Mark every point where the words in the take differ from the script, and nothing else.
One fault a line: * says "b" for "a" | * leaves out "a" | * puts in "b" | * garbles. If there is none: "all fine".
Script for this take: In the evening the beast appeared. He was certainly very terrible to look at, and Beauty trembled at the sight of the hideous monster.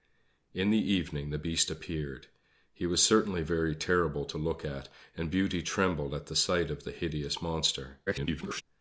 * garbles